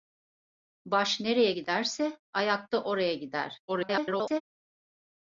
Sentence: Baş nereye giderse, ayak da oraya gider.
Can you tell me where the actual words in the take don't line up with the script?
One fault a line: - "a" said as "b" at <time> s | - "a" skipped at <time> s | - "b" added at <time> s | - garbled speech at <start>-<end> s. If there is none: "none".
- garbled speech at 3.7-4.4 s